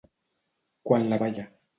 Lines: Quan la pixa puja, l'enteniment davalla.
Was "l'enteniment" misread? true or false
true